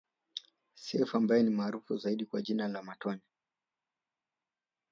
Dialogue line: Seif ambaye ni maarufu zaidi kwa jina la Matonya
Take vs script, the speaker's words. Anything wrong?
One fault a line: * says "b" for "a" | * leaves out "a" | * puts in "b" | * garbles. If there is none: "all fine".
all fine